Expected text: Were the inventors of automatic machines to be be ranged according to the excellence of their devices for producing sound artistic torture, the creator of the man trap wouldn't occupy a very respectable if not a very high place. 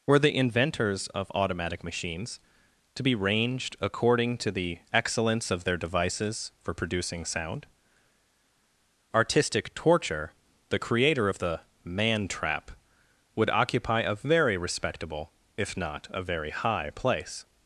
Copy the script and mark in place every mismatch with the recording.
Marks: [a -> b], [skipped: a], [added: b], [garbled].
Were the inventors of automatic machines to be [skipped: be] ranged according to the excellence of their devices for producing sound artistic torture, the creator of the man trap [wouldn't -> would] occupy a very respectable if not a very high place.